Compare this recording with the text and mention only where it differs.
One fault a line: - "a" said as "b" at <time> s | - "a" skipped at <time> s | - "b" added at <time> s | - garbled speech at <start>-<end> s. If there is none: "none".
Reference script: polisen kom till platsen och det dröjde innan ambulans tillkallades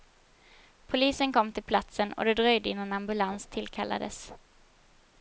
none